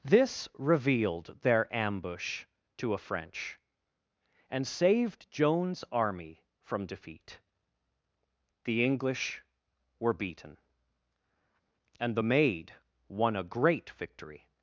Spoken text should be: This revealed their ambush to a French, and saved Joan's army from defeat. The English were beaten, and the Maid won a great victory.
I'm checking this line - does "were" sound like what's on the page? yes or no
yes